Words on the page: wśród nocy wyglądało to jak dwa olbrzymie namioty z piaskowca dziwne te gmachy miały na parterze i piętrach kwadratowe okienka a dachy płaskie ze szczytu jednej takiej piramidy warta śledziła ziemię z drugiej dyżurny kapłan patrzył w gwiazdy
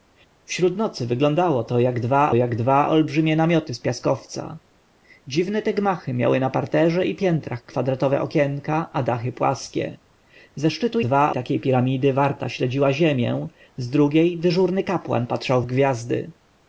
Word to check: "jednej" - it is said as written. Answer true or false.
false